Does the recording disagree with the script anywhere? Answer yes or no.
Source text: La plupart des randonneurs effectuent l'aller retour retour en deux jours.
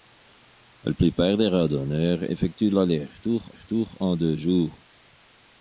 no